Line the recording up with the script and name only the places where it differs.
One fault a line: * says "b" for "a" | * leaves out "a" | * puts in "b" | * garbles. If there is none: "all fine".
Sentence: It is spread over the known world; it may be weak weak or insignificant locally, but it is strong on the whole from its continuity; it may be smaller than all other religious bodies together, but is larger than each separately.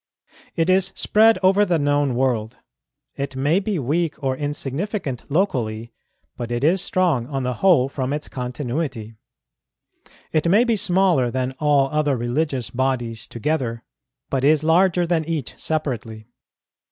* leaves out "weak"